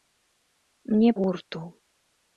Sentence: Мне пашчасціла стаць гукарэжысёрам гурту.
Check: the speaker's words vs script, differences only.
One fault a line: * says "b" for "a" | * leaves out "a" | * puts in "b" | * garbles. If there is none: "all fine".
* leaves out "пашчасціла стаць гукарэжысёрам"